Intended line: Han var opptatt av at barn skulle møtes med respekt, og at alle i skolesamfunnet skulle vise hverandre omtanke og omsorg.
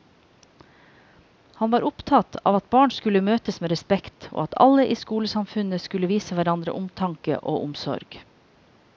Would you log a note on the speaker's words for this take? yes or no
no